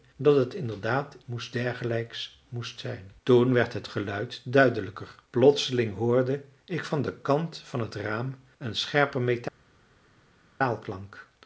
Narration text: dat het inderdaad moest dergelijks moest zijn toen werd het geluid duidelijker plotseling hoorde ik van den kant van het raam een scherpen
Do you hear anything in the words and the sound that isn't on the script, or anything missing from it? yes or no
no